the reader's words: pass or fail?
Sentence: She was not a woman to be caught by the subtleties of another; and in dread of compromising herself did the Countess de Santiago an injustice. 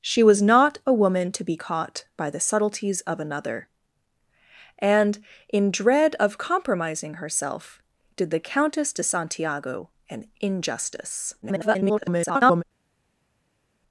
fail